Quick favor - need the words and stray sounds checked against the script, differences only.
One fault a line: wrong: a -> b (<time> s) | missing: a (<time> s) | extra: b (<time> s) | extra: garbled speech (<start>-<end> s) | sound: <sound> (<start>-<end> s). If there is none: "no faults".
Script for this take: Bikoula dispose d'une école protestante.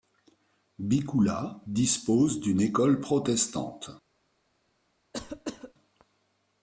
sound: cough (5.1-5.7 s)